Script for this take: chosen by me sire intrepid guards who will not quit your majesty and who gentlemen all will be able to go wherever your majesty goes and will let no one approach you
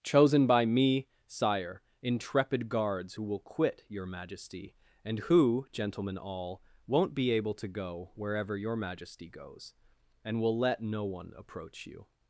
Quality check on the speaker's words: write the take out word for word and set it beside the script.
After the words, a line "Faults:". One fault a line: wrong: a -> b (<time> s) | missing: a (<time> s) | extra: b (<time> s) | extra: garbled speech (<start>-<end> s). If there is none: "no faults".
chosen by me sire intrepid guards who will quit your majesty and who gentlemen all won't be able to go wherever your majesty goes and will let no one approach you
Faults:
missing: not (3.4 s)
wrong: will -> won't (6.9 s)